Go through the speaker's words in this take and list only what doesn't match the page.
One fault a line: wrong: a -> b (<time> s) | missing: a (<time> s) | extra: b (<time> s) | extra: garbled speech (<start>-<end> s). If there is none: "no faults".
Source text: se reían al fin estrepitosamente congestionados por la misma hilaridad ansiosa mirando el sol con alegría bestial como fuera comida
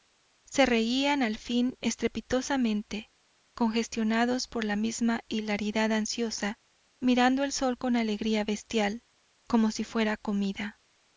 extra: si (9.7 s)